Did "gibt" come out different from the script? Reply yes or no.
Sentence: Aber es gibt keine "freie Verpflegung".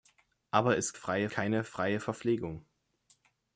yes